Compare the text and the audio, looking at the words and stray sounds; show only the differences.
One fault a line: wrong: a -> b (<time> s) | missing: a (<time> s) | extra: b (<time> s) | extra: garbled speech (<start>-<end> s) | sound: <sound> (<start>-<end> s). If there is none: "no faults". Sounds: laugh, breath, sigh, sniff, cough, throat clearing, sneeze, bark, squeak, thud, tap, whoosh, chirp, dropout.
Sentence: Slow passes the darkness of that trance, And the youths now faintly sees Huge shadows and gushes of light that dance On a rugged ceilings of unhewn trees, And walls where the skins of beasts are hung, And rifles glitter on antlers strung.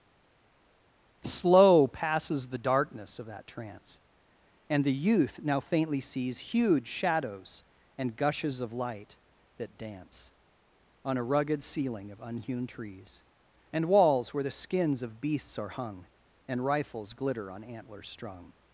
wrong: youths -> youth (4.9 s)
wrong: ceilings -> ceiling (11.6 s)